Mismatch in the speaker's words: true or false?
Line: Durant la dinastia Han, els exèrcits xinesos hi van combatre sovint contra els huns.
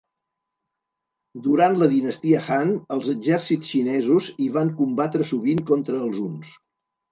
false